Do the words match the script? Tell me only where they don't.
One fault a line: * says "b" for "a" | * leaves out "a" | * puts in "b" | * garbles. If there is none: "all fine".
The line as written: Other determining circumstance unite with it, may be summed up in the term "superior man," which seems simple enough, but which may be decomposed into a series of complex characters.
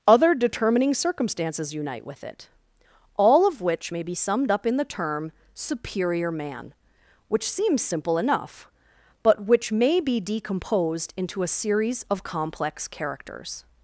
* says "circumstances" for "circumstance"
* puts in "all of which"